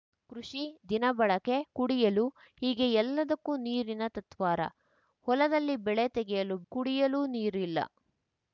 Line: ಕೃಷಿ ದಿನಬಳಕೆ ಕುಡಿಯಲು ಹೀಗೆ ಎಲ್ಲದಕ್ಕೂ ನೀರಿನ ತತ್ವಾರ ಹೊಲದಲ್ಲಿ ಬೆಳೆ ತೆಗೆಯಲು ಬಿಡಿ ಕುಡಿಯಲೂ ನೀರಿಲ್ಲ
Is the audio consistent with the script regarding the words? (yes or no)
no